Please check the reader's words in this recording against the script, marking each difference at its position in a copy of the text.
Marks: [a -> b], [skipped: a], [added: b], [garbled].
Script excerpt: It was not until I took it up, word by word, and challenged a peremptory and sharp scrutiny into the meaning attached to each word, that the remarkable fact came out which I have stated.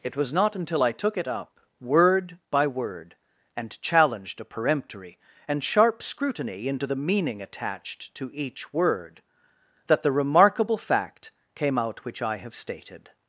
It was not until I took it up, word by word, and challenged a peremptory and sharp scrutiny into the meaning attached to each word, that the remarkable fact came out which I have stated.